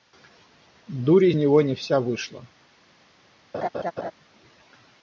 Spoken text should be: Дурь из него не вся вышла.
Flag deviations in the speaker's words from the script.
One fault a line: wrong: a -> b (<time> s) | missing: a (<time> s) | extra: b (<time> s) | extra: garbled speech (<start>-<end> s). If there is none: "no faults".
no faults